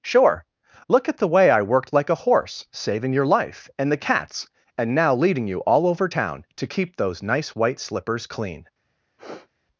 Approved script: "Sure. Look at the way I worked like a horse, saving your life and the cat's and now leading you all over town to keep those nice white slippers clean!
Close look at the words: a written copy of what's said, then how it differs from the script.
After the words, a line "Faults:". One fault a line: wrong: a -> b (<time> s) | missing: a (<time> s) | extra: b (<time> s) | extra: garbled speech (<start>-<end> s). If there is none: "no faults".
"Sure. Look at the way I worked like a horse, saving your life and the cat's and now leading you all over town to keep those nice white slippers clean!
Faults:
no faults